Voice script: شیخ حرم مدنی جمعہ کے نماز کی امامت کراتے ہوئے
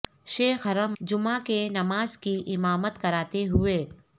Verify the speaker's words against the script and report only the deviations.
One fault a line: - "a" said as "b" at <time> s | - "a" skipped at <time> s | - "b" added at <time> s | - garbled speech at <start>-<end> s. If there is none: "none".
- "مدنی" skipped at 0.9 s